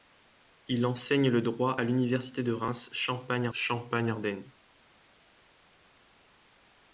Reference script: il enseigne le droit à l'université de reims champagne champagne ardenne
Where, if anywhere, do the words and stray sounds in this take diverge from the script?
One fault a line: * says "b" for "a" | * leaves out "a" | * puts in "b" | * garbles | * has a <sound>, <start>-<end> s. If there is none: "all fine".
all fine